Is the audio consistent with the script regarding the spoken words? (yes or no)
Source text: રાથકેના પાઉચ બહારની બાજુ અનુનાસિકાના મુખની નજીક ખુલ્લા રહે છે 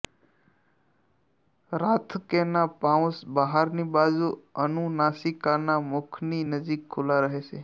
yes